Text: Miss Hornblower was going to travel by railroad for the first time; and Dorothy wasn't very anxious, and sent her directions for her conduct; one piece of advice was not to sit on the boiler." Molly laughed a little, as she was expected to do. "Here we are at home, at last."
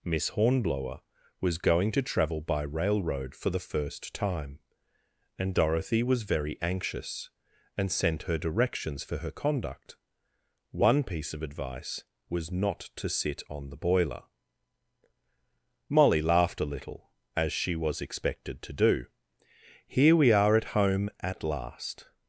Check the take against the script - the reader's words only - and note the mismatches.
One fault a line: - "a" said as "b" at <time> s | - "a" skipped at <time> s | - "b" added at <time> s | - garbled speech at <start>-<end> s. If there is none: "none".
- "wasn't" said as "was" at 6.0 s